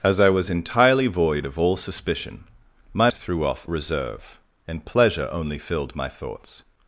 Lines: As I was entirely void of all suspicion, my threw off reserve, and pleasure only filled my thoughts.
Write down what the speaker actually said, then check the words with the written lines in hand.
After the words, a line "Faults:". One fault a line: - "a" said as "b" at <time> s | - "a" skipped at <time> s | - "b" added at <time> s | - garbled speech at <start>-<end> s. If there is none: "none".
As I was entirely void of all suspicion, my threw off reserve, and pleasure only filled my thoughts.
Faults:
none